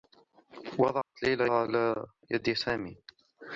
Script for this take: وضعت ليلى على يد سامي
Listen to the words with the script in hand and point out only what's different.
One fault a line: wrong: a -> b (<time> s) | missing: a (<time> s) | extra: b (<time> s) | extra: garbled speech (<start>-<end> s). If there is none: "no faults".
no faults